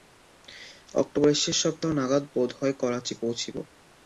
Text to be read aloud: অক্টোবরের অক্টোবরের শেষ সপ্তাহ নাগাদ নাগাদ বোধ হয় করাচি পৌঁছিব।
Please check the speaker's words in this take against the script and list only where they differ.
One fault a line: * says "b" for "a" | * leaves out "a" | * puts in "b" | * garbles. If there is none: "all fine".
* leaves out "অক্টোবরের"
* leaves out "নাগাদ"